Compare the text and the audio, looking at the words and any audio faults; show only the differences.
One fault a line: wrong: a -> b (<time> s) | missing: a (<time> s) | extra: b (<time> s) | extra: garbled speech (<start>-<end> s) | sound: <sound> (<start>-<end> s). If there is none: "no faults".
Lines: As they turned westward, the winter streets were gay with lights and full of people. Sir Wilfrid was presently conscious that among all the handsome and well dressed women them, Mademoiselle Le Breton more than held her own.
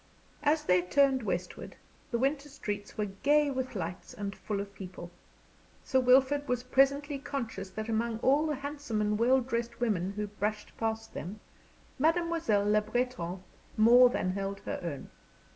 extra: who brushed past (10.1 s)